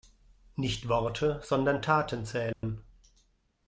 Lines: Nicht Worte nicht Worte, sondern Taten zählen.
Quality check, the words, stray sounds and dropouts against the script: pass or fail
fail